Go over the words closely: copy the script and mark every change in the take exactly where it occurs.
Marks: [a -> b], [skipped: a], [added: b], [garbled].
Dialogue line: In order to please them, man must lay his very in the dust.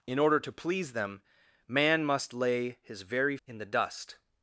In order to please them, man must lay his very in the dust.